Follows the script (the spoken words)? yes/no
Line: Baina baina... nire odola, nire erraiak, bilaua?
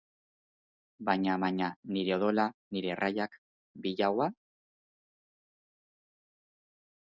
yes